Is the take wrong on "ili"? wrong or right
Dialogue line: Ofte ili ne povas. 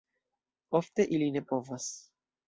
right